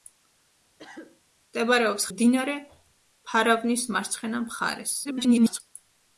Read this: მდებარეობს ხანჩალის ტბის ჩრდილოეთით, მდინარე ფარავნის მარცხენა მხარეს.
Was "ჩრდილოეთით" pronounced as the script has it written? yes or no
no